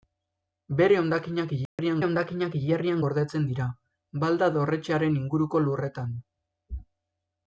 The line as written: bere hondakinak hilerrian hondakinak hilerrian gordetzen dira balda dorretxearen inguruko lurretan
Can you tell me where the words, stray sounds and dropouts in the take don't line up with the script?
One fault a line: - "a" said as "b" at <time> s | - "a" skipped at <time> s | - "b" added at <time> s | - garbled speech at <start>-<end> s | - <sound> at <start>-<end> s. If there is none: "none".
- dropout at 1.7-1.8 s